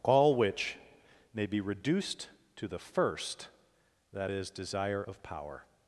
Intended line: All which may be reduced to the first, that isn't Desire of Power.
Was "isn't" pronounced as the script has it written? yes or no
no